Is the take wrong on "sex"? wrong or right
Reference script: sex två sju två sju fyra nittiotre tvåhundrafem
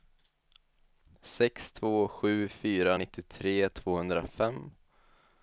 right